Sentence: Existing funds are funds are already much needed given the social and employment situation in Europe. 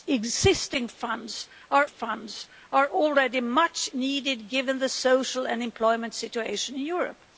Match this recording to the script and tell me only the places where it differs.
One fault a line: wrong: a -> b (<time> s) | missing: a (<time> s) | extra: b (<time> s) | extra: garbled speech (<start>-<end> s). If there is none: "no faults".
no faults